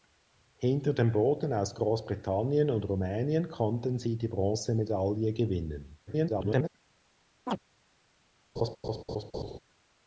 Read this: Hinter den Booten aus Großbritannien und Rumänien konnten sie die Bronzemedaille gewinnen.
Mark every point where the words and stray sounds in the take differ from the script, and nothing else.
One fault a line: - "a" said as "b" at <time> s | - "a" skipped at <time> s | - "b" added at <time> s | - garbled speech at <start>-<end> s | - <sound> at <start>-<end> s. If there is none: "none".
- garbled speech at 6.1-6.7 s
- chirp at 7.5-7.6 s
- laugh at 8.6-9.6 s